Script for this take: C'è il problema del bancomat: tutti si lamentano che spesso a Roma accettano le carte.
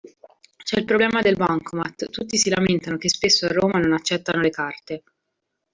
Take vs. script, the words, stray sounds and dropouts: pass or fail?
fail